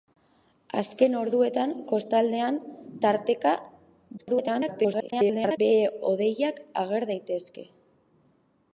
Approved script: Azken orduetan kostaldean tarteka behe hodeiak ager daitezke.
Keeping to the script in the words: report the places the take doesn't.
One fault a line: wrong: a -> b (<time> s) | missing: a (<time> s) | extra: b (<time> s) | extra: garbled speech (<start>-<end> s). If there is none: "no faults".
extra: garbled speech (4.2-5.6 s)